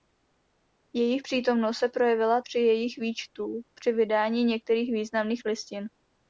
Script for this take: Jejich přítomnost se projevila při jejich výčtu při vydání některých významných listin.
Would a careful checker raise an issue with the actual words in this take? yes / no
no